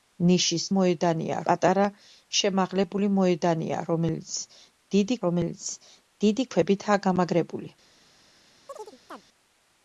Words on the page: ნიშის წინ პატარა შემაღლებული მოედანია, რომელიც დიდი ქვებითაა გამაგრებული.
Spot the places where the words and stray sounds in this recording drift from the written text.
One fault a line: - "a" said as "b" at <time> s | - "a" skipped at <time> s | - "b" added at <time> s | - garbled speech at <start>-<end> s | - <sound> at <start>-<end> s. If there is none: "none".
- "წინ" said as "მოედანია" at 0.8 s
- "რომელიც დიდი" added at 5.3 s
- chirp at 8.7-9.2 s